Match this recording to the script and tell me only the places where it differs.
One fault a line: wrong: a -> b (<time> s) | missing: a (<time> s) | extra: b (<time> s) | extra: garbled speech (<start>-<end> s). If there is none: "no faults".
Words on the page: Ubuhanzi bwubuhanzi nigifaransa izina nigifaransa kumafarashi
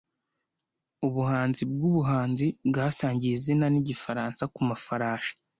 wrong: nigifaransa -> bwasangiye (2.7 s)